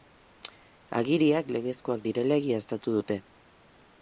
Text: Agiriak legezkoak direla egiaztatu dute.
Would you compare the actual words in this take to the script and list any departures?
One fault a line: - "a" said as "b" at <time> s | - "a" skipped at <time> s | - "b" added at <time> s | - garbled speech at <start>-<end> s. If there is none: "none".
none